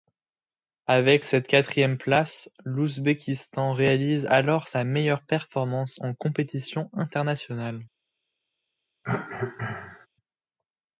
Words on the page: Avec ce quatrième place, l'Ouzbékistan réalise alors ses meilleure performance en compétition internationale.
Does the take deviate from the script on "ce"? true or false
true